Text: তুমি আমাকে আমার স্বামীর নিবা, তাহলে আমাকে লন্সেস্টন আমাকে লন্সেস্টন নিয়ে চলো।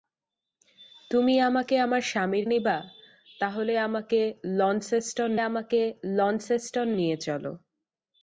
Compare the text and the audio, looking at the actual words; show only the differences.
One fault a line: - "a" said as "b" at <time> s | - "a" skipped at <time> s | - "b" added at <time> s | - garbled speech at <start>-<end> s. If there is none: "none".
none